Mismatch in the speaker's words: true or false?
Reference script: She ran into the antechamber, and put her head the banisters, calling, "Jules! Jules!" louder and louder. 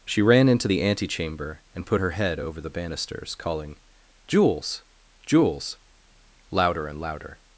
true